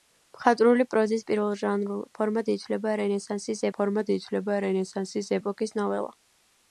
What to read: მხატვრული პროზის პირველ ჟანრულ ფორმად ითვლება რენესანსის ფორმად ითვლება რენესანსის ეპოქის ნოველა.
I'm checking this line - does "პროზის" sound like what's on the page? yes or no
yes